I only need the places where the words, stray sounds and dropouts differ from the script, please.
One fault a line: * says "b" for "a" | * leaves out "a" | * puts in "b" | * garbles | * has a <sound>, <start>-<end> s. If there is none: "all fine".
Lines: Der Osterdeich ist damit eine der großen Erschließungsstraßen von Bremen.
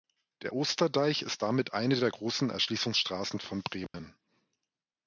* has a dropout, 3.9-3.9 s